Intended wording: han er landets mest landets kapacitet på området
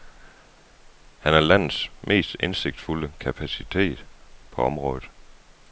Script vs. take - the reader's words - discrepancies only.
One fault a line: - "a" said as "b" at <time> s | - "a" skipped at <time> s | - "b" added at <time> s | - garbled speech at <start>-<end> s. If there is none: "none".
- "landets" said as "indsigtsfulde" at 2.4 s